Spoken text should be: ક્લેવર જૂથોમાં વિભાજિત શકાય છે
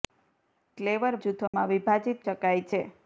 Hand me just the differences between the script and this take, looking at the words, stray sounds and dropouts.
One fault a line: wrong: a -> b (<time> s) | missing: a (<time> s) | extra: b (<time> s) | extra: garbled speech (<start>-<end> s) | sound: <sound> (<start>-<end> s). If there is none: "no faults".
sound: dropout (1.5-1.5 s)